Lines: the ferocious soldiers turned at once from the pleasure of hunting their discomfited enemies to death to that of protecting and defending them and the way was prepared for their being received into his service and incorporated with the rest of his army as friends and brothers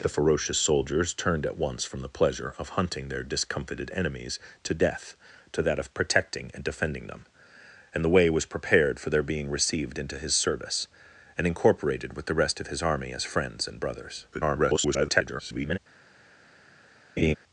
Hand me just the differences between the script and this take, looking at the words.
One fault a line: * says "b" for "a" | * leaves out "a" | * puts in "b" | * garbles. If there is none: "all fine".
* garbles